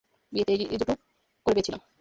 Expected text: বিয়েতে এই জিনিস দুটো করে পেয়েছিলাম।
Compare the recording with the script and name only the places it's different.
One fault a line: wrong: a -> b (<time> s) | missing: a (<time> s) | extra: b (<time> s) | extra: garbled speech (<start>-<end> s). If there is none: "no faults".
missing: জিনিস (0.8 s)